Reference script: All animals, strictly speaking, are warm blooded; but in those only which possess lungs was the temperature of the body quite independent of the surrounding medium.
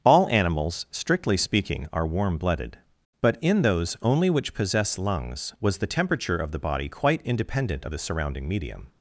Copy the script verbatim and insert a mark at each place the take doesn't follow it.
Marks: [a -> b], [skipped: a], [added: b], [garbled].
All animals, strictly speaking, are warm blooded; but in those only which possess lungs was the temperature of the body quite independent of the surrounding medium.